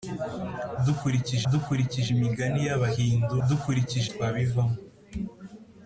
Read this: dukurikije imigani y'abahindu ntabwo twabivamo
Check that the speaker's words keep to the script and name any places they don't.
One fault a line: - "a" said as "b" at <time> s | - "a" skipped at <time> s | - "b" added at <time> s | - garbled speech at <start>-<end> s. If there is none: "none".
- "dukurikije" added at 1.5 s
- "ntabwo" said as "dukurikije" at 3.5 s